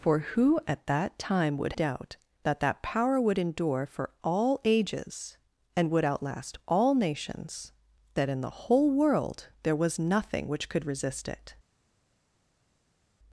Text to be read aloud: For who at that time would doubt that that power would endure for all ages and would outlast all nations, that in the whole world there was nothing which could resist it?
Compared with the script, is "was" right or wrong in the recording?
right